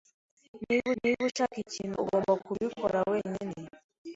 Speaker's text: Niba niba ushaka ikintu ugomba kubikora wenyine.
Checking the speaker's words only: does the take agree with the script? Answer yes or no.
yes